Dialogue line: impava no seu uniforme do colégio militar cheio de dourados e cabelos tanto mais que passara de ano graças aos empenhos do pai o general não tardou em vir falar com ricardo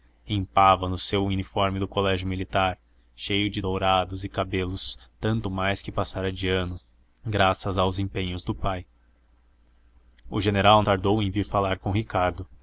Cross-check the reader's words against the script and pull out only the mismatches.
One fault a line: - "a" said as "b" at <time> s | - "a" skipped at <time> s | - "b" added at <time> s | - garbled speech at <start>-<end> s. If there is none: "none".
- "não" skipped at 10.8 s